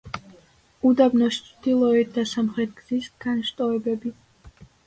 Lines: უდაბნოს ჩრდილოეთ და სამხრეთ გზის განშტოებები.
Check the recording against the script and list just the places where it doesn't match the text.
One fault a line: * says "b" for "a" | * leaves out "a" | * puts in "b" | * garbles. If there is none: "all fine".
all fine